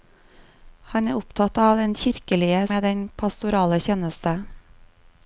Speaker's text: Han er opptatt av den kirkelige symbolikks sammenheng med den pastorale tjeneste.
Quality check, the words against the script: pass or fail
fail